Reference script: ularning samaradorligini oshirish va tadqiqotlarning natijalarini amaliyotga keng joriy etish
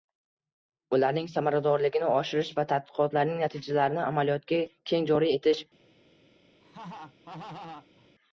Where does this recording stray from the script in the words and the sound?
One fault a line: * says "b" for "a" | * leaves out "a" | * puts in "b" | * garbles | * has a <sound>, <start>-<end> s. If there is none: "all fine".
* has a laugh, 6.6-8.1 s